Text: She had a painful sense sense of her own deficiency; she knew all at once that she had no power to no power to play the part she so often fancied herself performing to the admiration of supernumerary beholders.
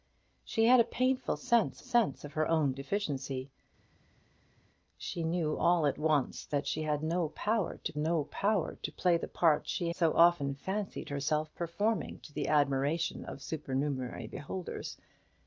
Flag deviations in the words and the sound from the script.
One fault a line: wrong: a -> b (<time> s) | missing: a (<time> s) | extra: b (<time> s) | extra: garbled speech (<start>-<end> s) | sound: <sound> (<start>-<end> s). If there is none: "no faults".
no faults